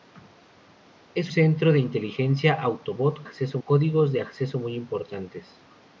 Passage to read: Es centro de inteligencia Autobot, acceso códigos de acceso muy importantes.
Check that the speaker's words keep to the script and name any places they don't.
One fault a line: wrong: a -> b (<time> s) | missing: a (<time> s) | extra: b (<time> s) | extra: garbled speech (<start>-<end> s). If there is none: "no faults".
no faults